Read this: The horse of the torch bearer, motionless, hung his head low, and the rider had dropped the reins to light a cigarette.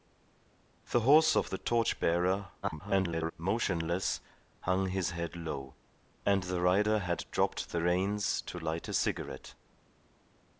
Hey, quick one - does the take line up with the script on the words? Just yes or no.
no